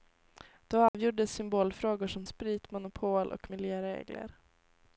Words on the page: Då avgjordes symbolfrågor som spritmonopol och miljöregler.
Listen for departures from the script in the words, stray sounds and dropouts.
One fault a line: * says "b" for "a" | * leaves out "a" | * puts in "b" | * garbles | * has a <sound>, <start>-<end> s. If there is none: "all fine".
* has a dropout, 0.9-0.9 s